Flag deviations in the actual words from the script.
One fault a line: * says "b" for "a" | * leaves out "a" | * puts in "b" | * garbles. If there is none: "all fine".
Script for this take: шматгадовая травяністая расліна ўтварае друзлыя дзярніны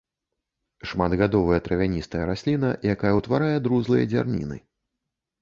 * puts in "якая"